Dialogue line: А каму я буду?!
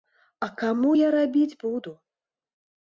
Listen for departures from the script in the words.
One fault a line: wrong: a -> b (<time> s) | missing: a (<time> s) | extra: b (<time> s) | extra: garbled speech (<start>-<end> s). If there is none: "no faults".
extra: рабіць (1.2 s)